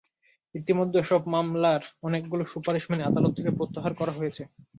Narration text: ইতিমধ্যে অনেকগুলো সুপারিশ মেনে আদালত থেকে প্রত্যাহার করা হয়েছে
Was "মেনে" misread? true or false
false